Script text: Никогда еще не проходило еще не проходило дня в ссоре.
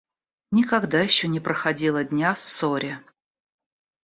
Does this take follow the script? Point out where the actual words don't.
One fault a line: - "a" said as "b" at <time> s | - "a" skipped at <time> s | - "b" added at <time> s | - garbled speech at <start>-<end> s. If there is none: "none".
- "еще не проходило" skipped at 2.0 s